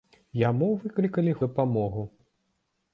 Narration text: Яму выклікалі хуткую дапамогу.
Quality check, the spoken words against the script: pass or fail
fail